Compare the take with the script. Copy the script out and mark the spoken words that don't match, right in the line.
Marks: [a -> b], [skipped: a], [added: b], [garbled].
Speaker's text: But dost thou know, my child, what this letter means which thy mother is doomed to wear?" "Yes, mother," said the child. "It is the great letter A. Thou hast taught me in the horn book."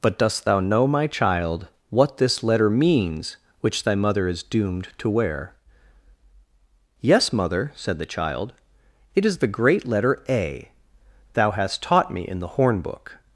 But dost thou know, my child, what this letter means which thy mother is doomed to wear?" "Yes, mother," said the child. "It is the great letter A. Thou hast taught me in the horn book."